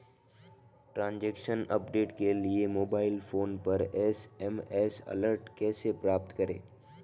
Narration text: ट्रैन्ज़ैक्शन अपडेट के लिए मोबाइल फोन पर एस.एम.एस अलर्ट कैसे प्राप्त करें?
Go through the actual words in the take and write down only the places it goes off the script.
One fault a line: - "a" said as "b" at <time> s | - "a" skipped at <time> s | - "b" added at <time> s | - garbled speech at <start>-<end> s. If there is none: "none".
none